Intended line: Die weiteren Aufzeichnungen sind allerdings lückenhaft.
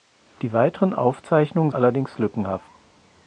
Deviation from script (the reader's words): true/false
true